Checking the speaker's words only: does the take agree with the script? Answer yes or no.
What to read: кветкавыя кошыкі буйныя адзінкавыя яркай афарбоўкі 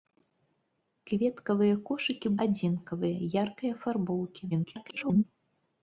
no